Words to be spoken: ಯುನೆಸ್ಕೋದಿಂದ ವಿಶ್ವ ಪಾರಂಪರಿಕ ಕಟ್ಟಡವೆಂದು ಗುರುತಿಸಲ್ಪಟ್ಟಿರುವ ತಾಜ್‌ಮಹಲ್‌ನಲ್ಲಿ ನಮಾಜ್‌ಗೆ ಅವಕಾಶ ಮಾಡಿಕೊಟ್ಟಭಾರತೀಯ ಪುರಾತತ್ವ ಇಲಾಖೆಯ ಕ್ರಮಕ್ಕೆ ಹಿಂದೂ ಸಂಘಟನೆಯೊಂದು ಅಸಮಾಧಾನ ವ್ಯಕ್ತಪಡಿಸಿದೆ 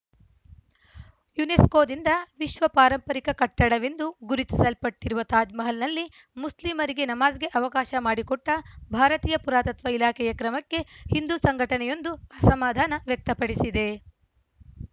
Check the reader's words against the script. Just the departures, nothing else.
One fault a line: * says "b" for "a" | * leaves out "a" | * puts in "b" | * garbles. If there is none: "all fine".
* puts in "ಮುಸ್ಲಿಮರಿಗೆ"